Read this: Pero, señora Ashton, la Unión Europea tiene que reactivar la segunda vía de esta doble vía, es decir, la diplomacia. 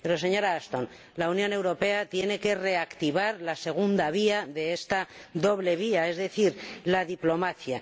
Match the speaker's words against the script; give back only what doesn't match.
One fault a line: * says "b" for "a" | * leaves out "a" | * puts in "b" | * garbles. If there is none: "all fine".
all fine